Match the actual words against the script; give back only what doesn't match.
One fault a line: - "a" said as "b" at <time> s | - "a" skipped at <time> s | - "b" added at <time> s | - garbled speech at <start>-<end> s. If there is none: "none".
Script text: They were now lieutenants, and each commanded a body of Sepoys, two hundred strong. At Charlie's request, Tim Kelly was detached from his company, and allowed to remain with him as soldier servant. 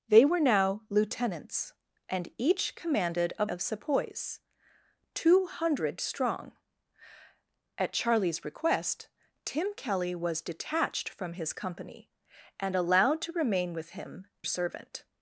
- "body" skipped at 3.5 s
- "as soldier" skipped at 14.3 s